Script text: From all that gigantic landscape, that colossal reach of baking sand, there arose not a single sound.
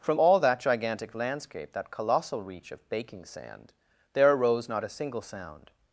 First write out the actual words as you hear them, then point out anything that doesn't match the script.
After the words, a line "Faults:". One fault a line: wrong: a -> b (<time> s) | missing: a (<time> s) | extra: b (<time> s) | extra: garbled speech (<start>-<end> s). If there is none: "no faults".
From all that gigantic landscape, that colossal reach of baking sand, there arose not a single sound.
Faults:
no faults